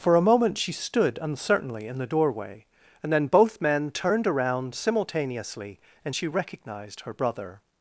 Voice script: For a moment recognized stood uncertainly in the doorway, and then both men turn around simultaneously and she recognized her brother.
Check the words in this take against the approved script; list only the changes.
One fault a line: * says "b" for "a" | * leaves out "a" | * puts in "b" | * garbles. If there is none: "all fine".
* says "she" for "recognized"
* says "turned" for "turn"